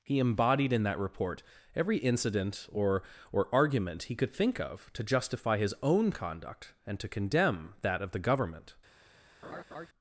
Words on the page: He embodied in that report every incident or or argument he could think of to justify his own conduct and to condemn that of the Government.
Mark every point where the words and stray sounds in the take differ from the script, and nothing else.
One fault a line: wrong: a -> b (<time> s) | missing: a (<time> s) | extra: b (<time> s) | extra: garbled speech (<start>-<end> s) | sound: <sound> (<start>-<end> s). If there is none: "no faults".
sound: laugh (9.4-9.9 s)